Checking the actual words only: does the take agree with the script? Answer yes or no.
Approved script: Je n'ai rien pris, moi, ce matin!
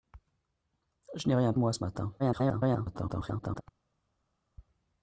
no